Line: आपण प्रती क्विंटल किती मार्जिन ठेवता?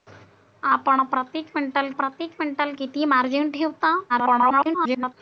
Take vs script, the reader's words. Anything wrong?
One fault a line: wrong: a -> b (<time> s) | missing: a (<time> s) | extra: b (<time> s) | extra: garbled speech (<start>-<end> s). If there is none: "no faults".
extra: प्रती क्विंटल (1.9 s)
extra: garbled speech (4.1-5.1 s)